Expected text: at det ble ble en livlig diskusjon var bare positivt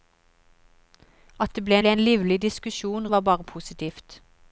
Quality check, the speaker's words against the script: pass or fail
pass